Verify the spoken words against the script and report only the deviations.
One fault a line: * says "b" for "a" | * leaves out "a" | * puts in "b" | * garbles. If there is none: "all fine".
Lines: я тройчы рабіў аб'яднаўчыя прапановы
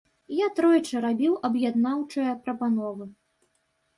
all fine